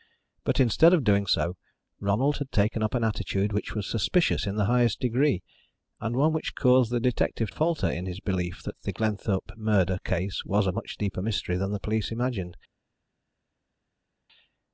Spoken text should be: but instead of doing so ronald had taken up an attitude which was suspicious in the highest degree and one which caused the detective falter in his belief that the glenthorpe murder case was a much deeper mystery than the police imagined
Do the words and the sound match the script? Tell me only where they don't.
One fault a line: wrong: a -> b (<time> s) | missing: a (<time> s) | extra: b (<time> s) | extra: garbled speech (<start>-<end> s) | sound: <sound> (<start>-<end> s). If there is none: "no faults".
no faults